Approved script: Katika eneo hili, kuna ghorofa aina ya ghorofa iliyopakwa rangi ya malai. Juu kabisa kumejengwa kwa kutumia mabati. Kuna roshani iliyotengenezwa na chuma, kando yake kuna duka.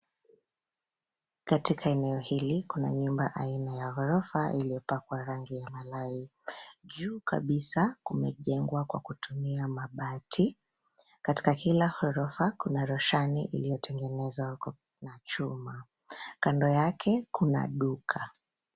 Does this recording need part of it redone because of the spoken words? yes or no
yes